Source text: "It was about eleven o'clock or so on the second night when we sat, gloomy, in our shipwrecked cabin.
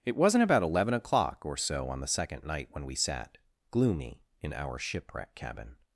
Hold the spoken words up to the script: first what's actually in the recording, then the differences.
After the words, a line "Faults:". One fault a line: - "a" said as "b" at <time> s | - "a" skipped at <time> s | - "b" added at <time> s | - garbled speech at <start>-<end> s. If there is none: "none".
"It wasn't about eleven o'clock or so on the second night when we sat, gloomy, in our shipwreck cabin.
Faults:
- "was" said as "wasn't" at 0.1 s
- "shipwrecked" said as "shipwreck" at 4.8 s